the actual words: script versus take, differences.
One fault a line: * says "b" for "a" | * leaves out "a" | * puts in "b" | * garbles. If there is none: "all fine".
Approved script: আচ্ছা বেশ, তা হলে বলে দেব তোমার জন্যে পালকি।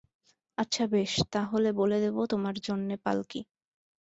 all fine